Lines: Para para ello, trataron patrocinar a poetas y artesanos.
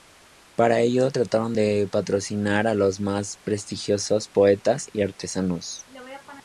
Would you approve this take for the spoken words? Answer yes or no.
no